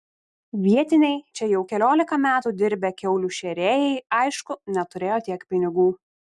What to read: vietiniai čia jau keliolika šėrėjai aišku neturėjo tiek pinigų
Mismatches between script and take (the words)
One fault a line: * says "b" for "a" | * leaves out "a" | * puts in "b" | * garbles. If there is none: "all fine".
* puts in "metų dirbę kiaulių"